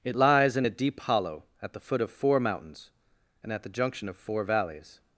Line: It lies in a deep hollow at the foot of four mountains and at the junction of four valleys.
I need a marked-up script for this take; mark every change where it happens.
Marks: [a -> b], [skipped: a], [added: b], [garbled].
It lies in a deep hollow at the foot of four mountains and at the junction of four valleys.